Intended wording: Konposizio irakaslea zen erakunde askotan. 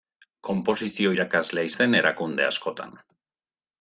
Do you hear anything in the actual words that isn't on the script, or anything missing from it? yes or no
no